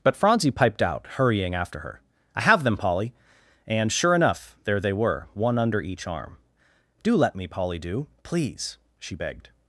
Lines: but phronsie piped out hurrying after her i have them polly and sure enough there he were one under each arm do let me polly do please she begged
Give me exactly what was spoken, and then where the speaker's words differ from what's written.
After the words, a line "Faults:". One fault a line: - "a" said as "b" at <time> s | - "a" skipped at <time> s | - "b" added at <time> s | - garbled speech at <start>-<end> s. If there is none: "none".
but phronsie piped out hurrying after her i have them polly and sure enough there they were one under each arm do let me polly do please she begged
Faults:
- "he" said as "they" at 4.8 s